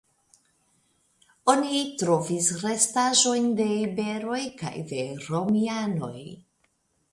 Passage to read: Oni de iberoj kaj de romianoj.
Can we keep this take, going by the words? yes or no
no